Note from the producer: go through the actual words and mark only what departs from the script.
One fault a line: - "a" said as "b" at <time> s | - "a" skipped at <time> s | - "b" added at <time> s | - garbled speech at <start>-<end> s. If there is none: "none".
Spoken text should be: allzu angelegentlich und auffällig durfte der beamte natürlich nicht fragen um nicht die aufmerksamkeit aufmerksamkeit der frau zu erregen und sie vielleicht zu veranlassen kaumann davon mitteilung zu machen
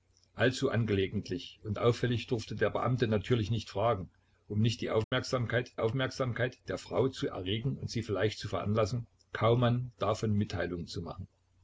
none